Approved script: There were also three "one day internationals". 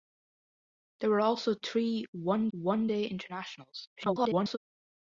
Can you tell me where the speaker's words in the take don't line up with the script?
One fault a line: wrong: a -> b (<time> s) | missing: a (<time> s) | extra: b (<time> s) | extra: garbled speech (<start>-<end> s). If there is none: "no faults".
extra: one (2.5 s)
extra: garbled speech (4.0-4.6 s)